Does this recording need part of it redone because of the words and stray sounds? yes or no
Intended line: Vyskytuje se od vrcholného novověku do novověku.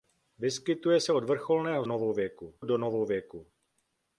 no